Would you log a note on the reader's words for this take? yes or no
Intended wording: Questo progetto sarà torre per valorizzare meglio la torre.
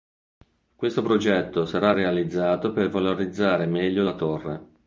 yes